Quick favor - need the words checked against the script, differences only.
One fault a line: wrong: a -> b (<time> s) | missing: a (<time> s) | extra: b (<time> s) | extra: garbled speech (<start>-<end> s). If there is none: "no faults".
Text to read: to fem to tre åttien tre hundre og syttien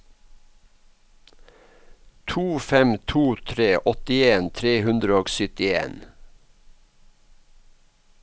no faults